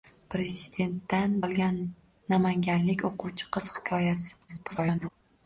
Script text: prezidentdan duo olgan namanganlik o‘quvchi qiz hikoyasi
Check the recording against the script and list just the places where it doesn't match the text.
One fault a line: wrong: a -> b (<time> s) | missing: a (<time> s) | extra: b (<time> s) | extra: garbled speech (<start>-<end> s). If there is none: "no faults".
missing: duo (1.4 s)
extra: garbled speech (4.5-5.1 s)